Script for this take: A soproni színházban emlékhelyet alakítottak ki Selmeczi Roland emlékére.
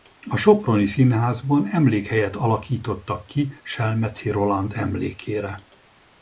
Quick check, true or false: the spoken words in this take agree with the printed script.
true